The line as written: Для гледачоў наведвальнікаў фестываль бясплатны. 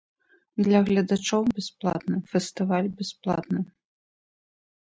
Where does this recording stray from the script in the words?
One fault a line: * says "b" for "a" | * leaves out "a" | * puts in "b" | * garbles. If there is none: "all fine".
* says "бясплатны" for "наведвальнікаў"